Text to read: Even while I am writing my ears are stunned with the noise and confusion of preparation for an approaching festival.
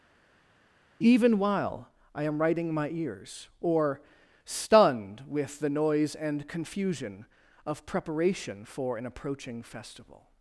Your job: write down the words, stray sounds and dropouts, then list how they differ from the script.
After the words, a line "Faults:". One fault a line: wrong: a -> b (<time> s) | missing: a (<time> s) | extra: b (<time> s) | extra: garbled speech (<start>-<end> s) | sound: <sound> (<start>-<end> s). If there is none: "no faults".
Even while I am writing my ears or stunned with the noise and confusion of preparation for an approaching festival.
Faults:
wrong: are -> or (3.6 s)